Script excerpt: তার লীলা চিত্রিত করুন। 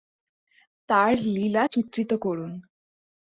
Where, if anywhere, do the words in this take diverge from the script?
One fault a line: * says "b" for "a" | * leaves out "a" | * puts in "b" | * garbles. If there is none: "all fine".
all fine